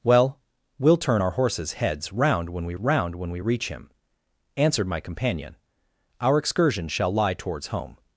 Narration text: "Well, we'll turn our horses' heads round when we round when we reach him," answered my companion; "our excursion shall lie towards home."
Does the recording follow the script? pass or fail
pass